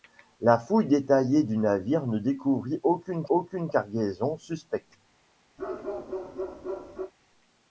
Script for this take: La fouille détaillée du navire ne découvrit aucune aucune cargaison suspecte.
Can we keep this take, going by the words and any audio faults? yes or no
no